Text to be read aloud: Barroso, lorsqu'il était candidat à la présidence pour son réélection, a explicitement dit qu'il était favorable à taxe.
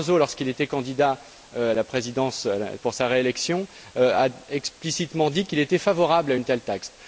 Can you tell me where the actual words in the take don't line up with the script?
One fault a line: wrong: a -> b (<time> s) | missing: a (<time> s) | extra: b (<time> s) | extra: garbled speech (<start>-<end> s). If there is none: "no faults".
wrong: son -> sa (3.0 s)
extra: une telle (6.3 s)